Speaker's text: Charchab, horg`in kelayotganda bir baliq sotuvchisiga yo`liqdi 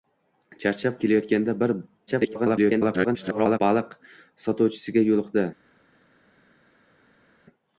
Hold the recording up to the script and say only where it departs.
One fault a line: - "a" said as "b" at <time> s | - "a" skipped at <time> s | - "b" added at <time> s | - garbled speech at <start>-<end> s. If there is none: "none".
- "horg`in" skipped at 0.9 s
- garbled speech at 2.1-3.6 s